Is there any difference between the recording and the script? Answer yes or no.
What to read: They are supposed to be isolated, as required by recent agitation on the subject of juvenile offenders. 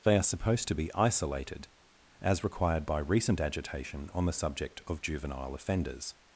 no